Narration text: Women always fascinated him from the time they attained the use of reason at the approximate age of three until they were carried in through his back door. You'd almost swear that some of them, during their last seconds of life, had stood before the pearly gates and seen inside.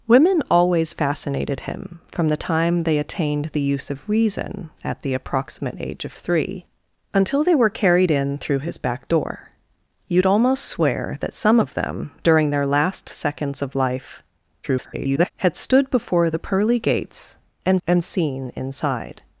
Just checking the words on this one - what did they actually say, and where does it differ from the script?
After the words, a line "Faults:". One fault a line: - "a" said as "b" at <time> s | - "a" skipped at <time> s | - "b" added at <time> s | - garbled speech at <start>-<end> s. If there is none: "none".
Women always fascinated him from the time they attained the use of reason at the approximate age of three until they were carried in through his back door. You'd almost swear that some of them, during their last seconds of life, [garbled] had stood before the pearly gates and and seen inside.
Faults:
- garbled speech at 14.6-15.3 s
- "and" added at 17.9 s